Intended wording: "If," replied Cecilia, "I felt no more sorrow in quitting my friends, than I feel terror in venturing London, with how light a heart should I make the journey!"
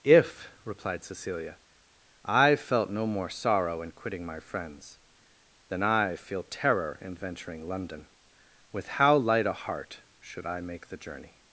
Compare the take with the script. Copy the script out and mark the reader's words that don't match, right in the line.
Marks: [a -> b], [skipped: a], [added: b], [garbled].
"If," replied Cecilia, "I felt no more sorrow in quitting my friends, than I feel terror in venturing London, with how light a heart should I make the journey!"